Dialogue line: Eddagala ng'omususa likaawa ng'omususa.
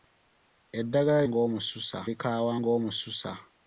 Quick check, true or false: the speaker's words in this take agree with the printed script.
true